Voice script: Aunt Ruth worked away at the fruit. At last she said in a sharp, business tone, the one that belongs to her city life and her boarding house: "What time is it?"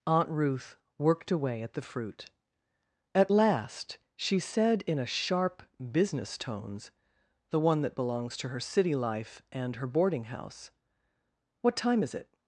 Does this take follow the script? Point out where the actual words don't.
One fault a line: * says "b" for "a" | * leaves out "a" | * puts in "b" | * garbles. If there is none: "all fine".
* says "tones" for "tone"